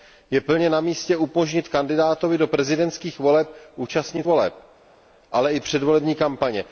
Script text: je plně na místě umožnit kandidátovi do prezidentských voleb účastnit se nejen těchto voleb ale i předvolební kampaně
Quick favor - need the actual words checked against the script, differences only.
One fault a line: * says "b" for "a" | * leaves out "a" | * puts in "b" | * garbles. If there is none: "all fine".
* leaves out "se nejen těchto"